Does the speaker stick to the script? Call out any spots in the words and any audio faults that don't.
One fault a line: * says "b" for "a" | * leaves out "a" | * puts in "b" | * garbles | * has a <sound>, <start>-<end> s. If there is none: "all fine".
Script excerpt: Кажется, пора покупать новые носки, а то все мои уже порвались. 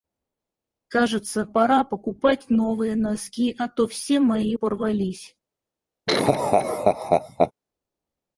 * leaves out "уже"
* has a laugh, 6.1-7.5 s